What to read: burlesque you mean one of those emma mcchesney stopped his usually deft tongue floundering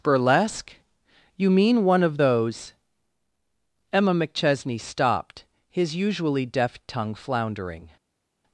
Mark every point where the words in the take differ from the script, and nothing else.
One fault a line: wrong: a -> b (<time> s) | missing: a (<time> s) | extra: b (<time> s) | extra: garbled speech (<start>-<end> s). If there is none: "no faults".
no faults